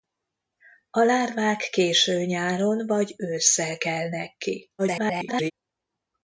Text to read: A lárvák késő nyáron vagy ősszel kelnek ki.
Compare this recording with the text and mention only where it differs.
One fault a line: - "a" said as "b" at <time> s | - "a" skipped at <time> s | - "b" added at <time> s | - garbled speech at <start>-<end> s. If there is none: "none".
- garbled speech at 4.8-5.5 s